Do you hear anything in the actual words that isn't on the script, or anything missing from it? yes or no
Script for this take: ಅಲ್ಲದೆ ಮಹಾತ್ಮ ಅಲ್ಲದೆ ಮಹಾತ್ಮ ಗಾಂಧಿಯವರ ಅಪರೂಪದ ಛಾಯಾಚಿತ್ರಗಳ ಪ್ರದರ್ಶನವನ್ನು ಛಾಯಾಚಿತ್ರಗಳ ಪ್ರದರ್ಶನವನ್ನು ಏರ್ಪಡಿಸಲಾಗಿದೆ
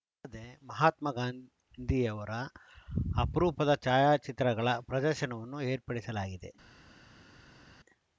yes